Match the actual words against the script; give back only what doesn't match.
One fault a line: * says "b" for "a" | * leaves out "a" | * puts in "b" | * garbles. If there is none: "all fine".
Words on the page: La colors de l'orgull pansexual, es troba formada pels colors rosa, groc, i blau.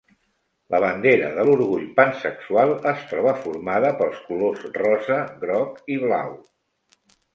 * says "bandera" for "colors"